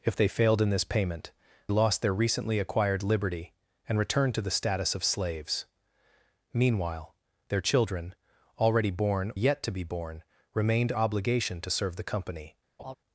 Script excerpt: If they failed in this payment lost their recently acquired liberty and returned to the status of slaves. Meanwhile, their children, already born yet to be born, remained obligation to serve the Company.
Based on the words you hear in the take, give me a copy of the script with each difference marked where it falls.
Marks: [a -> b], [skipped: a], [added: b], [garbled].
If they failed in this payment lost their recently acquired liberty and returned to the status of slaves. Meanwhile, their children, already born yet to be born, remained obligation to serve the Company.